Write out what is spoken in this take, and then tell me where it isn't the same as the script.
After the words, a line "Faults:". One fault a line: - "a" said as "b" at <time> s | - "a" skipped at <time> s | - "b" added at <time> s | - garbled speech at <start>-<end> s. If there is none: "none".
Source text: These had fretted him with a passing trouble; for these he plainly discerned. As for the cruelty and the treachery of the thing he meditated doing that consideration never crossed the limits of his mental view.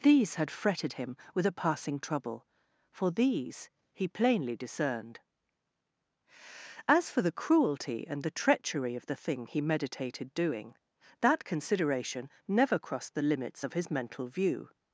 These had fretted him with a passing trouble; for these he plainly discerned. As for the cruelty and the treachery of the thing he meditated doing that consideration never crossed the limits of his mental view.
Faults:
none